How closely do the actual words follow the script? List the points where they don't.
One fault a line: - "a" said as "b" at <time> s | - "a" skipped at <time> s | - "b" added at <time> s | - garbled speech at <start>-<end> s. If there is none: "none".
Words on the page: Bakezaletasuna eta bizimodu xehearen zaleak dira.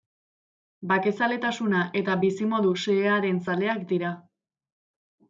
none